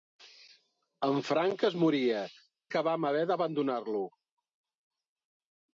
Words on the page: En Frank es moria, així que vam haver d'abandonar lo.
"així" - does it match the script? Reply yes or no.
no